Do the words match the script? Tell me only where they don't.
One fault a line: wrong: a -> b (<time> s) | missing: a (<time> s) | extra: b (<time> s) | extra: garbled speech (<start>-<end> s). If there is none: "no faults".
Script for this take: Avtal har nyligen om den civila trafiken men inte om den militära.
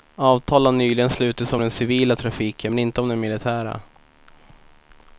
extra: slutits (1.1 s)